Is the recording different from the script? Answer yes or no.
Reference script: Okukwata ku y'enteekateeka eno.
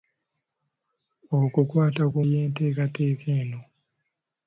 no